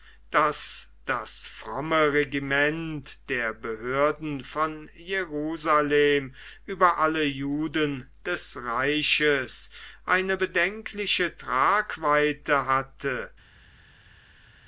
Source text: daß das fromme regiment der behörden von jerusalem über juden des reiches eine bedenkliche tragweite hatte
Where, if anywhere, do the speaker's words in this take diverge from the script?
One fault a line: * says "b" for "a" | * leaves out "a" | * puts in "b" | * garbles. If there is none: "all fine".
* puts in "alle"